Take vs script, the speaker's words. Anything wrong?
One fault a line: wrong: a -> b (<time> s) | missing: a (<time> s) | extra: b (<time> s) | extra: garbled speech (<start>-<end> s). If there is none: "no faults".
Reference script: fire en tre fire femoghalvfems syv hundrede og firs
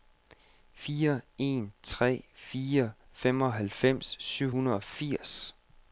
no faults